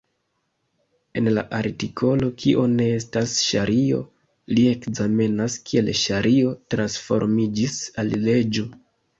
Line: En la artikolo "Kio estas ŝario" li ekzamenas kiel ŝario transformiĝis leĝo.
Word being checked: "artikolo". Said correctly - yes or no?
yes